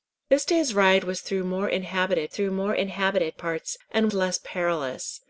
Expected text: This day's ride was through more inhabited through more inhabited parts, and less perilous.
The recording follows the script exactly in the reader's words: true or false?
true